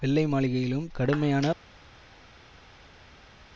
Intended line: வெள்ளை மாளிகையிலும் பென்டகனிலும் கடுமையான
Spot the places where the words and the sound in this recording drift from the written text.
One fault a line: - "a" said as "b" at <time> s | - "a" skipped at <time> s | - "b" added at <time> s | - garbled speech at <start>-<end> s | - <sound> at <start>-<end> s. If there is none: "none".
- "பென்டகனிலும்" skipped at 0.9 s